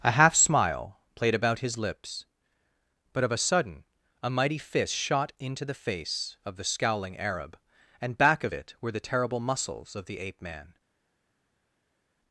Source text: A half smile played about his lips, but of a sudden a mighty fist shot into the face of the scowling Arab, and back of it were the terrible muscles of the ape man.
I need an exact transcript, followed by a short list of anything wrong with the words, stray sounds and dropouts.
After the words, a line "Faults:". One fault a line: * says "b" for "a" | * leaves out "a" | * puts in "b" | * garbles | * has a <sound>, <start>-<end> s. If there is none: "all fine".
A half smile played about his lips, but of a sudden a mighty fist shot into the face of the scowling Arab, and back of it were the terrible muscles of the ape man.
Faults:
all fine